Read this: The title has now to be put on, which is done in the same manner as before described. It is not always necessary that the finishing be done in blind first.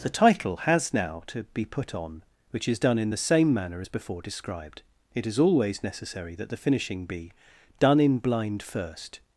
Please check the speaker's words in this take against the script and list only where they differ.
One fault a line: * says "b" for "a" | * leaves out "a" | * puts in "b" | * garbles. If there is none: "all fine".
* leaves out "not"